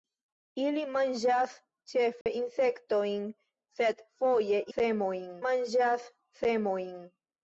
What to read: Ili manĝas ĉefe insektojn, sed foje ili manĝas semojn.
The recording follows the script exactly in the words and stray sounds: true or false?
false